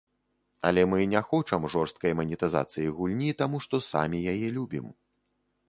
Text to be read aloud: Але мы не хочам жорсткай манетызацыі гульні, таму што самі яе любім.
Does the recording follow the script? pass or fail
pass